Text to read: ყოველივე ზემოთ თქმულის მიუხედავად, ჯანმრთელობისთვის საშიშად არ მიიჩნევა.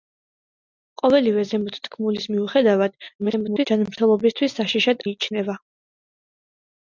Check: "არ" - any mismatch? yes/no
yes